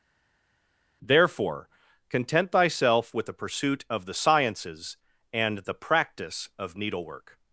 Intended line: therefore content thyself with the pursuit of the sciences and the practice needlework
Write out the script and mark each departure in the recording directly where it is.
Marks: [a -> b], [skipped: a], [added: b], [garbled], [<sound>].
therefore content thyself with the pursuit of the sciences and the practice [added: of] needlework